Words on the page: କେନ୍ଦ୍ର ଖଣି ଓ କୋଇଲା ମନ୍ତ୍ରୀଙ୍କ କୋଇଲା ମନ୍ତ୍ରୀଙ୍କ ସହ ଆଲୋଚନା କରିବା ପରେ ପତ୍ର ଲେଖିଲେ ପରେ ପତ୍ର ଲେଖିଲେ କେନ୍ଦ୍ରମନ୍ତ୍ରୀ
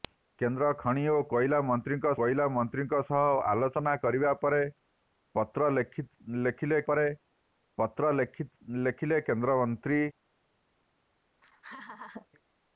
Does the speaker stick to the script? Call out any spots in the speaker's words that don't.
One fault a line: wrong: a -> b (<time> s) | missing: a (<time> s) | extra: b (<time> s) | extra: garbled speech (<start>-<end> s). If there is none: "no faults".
no faults